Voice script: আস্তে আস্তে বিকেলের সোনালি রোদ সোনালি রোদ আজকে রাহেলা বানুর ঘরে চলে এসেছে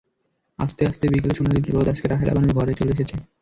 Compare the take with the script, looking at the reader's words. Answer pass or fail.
fail